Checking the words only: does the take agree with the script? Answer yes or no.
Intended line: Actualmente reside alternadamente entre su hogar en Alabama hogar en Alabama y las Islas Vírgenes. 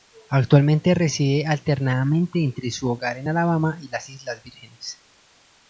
no